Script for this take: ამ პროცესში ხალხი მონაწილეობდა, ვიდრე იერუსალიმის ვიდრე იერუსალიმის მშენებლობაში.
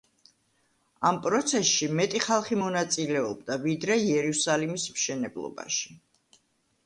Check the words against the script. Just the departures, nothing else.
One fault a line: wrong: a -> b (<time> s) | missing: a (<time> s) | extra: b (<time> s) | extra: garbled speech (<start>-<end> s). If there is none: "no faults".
extra: მეტი (2.0 s)
missing: ვიდრე იერუსალიმის (4.9 s)